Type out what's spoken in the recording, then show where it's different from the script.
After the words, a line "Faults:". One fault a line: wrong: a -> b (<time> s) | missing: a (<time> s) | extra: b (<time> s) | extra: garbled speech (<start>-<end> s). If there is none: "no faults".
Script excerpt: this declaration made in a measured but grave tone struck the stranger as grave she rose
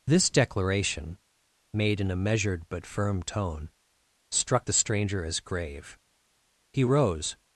this declaration made in a measured but firm tone struck the stranger as grave he rose
Faults:
wrong: grave -> firm (2.9 s)
wrong: she -> he (6.7 s)